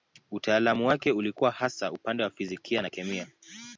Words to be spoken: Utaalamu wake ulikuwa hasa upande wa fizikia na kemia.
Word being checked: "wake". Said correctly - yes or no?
yes